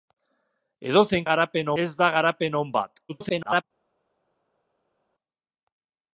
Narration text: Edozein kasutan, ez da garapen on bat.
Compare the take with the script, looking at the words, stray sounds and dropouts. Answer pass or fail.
fail